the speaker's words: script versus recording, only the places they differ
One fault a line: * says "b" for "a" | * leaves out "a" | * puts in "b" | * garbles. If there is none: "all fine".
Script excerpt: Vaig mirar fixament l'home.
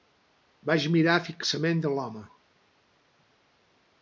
all fine